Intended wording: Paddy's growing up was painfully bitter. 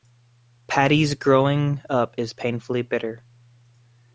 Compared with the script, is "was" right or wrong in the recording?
wrong